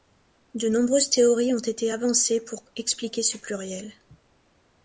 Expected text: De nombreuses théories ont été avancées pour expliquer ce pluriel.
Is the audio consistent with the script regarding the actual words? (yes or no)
yes